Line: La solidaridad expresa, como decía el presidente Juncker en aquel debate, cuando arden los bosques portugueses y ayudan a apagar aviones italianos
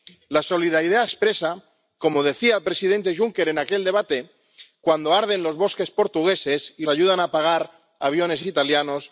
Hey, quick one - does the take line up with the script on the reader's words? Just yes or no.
yes